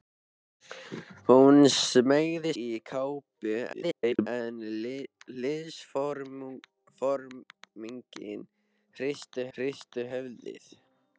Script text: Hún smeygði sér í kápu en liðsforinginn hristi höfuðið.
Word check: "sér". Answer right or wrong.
wrong